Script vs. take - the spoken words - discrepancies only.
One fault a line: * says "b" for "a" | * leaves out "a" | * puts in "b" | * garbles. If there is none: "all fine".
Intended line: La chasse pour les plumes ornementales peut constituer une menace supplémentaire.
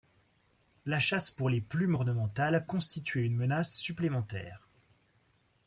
* leaves out "peut"